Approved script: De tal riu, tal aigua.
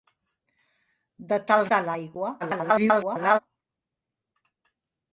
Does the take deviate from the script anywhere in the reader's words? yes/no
yes